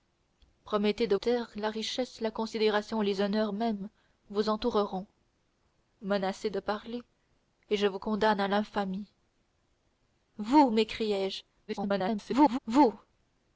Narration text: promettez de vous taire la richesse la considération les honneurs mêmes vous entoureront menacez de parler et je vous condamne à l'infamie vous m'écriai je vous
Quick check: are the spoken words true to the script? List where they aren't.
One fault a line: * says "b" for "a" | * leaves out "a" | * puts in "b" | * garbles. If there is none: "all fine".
* leaves out "vous"
* garbles